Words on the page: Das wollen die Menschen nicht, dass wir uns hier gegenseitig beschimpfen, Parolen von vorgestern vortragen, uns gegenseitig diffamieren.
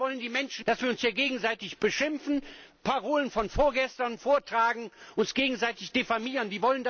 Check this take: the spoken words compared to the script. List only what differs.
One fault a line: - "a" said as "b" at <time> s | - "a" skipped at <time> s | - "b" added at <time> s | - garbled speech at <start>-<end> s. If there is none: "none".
- "nicht" skipped at 0.7 s